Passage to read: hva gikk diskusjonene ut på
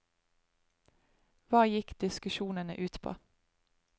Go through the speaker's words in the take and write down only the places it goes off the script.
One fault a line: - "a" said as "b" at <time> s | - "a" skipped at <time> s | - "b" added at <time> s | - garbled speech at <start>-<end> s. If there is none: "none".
none